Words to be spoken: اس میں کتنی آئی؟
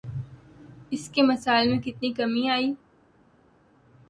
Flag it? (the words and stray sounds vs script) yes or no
yes